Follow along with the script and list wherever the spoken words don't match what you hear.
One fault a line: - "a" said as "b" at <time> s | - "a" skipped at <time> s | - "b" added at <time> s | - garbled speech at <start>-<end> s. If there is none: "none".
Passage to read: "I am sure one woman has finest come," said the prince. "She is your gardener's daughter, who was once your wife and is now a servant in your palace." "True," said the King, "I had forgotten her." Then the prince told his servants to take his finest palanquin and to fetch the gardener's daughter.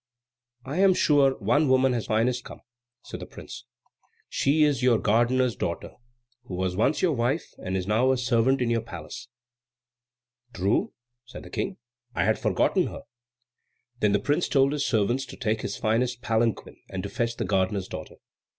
none